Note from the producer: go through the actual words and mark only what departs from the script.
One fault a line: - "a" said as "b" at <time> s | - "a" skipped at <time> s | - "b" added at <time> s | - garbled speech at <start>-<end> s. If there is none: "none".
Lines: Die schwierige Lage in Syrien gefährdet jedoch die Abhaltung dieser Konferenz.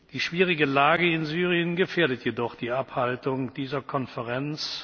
none